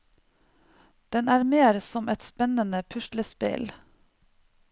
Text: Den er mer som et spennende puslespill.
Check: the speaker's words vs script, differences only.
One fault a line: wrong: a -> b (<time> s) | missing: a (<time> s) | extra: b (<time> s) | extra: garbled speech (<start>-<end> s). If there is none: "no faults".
no faults